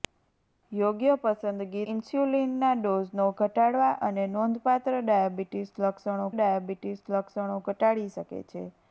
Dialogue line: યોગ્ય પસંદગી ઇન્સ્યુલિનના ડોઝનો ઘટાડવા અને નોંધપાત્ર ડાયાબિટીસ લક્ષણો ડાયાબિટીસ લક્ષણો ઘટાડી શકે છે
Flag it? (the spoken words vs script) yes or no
no